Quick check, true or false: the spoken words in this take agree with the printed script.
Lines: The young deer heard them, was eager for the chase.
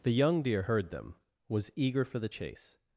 true